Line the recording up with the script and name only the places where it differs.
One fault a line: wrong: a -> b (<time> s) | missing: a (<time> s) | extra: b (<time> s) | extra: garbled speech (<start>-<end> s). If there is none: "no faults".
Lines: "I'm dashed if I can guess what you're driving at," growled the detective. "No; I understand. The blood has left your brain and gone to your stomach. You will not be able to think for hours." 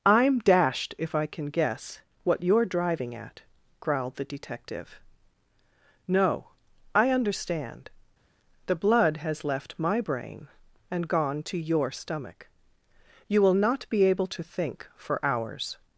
wrong: your -> my (9.8 s)